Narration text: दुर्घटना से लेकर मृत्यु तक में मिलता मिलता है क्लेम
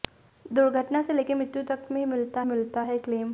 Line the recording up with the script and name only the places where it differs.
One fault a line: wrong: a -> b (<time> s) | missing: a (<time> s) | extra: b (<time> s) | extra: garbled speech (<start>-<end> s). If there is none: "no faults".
no faults